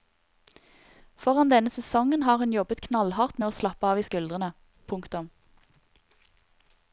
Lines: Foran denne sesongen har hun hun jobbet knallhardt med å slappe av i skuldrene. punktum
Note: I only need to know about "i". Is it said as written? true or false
true